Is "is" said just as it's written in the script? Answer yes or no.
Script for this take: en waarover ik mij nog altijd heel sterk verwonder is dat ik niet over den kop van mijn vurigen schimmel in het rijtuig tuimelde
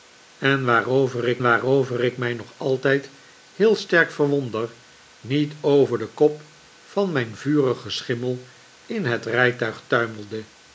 no